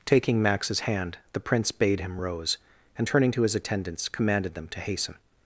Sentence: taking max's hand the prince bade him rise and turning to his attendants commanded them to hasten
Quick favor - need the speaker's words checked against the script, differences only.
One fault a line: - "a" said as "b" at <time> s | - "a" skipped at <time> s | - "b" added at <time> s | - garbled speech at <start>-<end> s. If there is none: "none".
- "rise" said as "rose" at 2.2 s